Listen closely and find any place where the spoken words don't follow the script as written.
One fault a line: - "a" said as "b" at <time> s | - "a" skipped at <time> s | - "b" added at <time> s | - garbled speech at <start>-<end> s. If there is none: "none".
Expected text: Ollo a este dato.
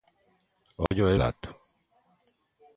- "este" skipped at 1.1 s